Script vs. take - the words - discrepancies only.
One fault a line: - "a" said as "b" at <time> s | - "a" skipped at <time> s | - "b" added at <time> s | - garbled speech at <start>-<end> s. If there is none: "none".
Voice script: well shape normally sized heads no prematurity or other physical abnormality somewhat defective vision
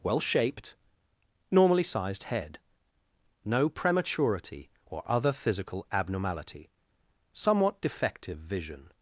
- "shape" said as "shaped" at 0.2 s
- "heads" said as "head" at 2.2 s